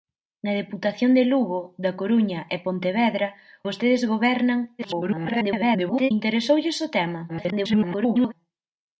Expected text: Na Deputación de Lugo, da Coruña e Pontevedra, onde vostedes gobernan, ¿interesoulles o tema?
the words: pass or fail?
fail